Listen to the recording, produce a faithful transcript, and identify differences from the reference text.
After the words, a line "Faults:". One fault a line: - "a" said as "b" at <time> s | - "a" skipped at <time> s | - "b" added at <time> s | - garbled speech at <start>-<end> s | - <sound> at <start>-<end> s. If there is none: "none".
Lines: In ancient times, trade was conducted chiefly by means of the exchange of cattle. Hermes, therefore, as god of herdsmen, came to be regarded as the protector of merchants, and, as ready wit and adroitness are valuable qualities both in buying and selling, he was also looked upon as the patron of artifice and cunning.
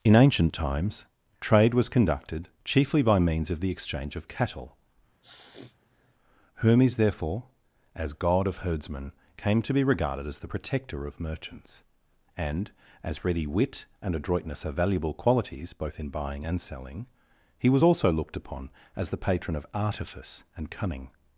In ancient times, trade was conducted chiefly by means of the exchange of cattle. Hermes, therefore, as god of herdsmen, came to be regarded as the protector of merchants, and, as ready wit and adroitness are valuable qualities both in buying and selling, he was also looked upon as the patron of artifice and cunning.
Faults:
- sniff at 5.2-6.1 s